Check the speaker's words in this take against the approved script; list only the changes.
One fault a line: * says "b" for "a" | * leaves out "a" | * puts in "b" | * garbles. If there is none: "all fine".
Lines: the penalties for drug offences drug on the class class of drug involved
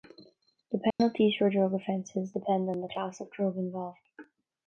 * says "depend" for "drug"
* leaves out "class"